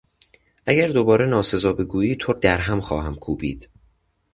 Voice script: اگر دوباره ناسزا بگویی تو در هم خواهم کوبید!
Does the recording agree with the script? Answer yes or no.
yes